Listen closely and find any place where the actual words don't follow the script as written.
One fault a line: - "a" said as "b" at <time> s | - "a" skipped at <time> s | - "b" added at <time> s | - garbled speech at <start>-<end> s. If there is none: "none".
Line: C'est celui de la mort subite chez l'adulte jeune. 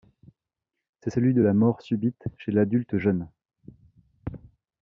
none